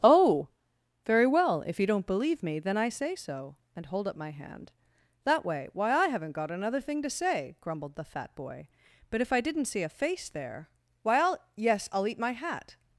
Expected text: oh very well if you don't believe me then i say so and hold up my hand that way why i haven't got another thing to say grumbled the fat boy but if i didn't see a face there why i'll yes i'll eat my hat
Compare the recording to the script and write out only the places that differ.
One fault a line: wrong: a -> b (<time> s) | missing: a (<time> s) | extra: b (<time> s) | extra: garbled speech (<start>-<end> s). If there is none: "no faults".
no faults